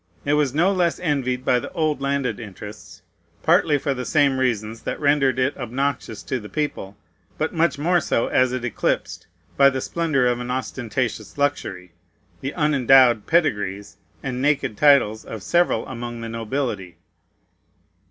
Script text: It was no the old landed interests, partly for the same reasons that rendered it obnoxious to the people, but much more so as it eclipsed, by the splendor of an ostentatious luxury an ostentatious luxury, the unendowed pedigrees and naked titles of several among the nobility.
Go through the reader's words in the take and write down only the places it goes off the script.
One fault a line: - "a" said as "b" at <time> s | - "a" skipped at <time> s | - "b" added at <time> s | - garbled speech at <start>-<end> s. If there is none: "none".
- "less envied by" added at 0.7 s
- "an ostentatious luxury" skipped at 11.9 s